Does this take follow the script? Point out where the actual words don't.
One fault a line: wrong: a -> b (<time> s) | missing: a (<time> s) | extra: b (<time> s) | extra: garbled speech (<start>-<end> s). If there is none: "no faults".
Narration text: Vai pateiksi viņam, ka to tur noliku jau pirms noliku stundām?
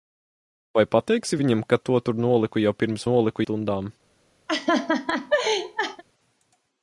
no faults